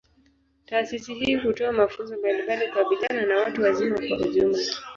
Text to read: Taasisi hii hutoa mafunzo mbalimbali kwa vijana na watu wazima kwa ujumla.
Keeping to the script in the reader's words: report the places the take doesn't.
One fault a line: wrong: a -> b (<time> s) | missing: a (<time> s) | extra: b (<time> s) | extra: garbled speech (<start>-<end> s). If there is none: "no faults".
no faults